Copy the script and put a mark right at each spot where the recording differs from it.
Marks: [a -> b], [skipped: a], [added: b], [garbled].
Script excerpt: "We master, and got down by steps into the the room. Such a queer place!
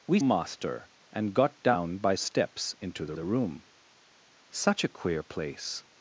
"We master, and got down by steps into the the room. Such a queer place!